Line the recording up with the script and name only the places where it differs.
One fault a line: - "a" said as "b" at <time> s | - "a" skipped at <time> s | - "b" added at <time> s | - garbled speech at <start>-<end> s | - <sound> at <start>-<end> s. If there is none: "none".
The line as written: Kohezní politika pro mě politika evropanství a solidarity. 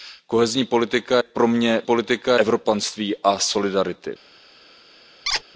- squeak at 5.3-5.4 s